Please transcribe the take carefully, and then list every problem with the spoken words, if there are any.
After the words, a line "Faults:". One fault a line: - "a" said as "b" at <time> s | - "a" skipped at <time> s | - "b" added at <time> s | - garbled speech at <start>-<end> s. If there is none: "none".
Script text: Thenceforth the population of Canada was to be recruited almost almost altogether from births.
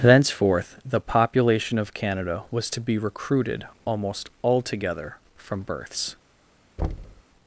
Thenceforth the population of Canada was to be recruited almost altogether from births.
Faults:
- "almost" skipped at 4.3 s